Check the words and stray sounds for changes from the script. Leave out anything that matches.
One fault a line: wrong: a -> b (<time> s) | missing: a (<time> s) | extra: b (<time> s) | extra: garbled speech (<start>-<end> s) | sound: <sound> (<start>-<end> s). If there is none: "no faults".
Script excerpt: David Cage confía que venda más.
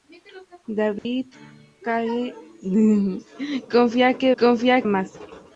sound: dropout (1.0-1.1 s)
wrong: venda -> confía (4.4 s)